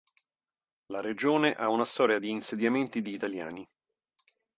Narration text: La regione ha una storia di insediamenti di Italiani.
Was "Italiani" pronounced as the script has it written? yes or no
yes